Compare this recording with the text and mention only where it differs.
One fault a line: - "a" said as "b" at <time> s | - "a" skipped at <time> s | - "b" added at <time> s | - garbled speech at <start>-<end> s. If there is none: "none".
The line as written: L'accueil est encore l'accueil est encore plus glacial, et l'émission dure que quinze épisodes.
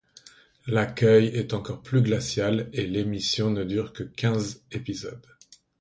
- "l'accueil est encore" skipped at 1.8 s
- "ne" added at 3.5 s